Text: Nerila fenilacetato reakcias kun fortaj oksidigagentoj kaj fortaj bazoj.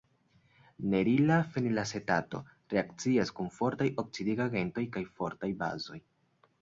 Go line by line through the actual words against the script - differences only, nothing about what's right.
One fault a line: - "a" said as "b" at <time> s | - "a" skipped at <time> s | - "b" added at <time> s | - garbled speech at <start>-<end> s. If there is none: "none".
none